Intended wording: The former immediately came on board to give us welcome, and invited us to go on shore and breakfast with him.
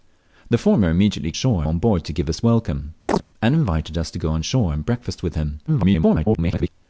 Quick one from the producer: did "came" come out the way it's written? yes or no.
no